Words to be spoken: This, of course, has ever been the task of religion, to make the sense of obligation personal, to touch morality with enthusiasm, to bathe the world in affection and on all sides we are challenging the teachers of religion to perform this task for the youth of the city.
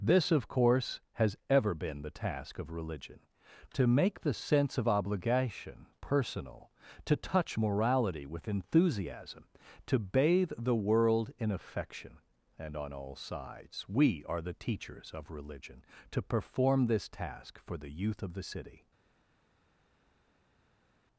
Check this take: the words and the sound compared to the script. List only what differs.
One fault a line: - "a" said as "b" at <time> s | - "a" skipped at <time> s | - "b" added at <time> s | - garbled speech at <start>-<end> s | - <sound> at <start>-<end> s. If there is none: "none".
- "challenging" skipped at 14.4 s